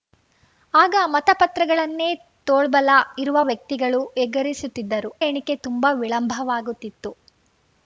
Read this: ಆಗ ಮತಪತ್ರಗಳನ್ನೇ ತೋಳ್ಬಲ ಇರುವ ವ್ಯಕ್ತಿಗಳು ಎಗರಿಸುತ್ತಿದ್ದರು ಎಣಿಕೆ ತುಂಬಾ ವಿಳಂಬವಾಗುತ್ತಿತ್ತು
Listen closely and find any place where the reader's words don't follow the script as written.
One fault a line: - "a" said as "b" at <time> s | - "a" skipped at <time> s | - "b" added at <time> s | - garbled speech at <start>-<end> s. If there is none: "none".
none